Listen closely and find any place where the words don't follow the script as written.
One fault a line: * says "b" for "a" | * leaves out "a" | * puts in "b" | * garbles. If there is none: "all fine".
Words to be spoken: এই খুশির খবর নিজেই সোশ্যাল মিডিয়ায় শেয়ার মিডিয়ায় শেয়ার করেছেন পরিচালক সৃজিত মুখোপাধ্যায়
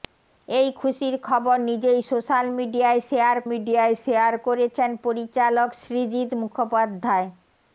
all fine